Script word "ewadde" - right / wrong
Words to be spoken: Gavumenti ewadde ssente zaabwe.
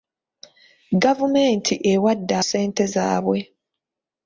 right